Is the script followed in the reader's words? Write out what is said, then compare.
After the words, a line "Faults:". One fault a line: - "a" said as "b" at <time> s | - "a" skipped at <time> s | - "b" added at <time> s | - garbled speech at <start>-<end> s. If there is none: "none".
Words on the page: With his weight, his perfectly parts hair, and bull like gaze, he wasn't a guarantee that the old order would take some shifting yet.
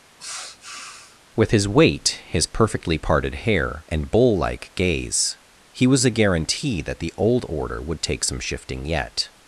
With his weight, his perfectly parted hair, and bull like gaze, he was a guarantee that the old order would take some shifting yet.
Faults:
- "parts" said as "parted" at 3.0 s
- "wasn't" said as "was" at 5.8 s